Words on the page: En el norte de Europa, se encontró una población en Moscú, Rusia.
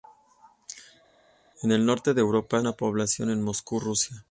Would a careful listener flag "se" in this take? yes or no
yes